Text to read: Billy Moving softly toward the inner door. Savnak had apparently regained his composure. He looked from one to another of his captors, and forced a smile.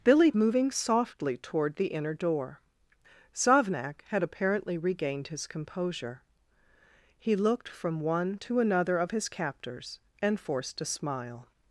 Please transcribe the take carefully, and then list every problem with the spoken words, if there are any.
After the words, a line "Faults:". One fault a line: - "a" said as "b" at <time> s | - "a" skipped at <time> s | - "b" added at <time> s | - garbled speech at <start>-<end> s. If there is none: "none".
Billy Moving softly toward the inner door. Savnak had apparently regained his composure. He looked from one to another of his captors, and forced a smile.
Faults:
none